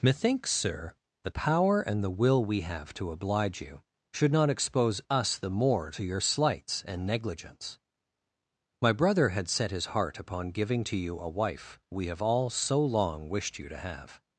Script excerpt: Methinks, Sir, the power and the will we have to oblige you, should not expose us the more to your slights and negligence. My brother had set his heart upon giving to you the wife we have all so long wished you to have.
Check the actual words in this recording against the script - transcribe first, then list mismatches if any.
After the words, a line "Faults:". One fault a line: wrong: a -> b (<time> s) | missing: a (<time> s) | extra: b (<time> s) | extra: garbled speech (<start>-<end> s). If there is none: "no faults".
Methinks, Sir, the power and the will we have to oblige you, should not expose us the more to your slights and negligence. My brother had set his heart upon giving to you a wife we have all so long wished you to have.
Faults:
wrong: the -> a (11.2 s)